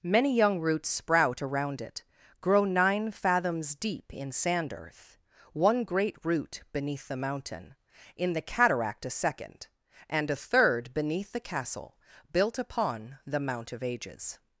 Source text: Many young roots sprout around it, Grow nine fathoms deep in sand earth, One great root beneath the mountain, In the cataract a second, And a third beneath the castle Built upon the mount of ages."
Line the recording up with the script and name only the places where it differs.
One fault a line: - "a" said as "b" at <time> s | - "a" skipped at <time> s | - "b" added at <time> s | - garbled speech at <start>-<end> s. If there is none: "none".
none